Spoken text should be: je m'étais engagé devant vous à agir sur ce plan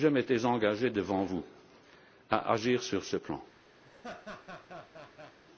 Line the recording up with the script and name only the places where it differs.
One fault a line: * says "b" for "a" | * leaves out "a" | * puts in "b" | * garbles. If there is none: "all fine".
all fine